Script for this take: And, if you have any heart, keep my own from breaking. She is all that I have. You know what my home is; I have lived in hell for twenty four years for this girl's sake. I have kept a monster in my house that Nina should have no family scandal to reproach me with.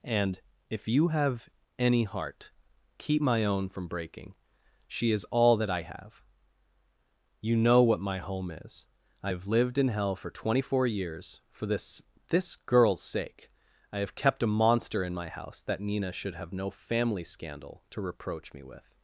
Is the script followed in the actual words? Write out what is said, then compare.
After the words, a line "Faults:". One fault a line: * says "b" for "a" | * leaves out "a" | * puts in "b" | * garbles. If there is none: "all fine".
And, if you have any heart, keep my own from breaking. She is all that I have. You know what my home is; I have lived in hell for twenty four years for this this girl's sake. I have kept a monster in my house that Nina should have no family scandal to reproach me with.
Faults:
* puts in "this"